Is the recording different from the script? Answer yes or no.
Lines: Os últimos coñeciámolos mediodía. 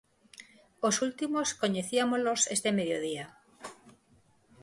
yes